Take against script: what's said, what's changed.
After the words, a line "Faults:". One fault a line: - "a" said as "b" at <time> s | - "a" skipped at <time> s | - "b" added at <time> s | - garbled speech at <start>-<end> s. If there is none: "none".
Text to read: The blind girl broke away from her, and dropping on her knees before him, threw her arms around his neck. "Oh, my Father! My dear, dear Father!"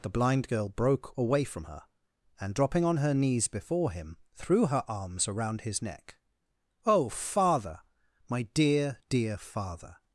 The blind girl broke away from her, and dropping on her knees before him, threw her arms around his neck. "Oh, Father! My dear, dear Father!"
Faults:
- "my" skipped at 7.1 s